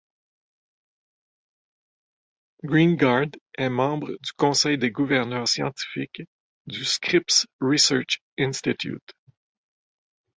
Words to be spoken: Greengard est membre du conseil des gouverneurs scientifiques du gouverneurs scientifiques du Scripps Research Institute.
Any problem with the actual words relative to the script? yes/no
yes